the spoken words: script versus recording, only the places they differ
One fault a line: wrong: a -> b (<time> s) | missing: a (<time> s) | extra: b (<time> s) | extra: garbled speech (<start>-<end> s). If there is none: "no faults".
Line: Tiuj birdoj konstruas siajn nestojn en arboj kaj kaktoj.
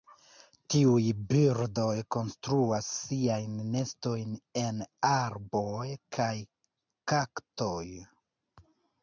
no faults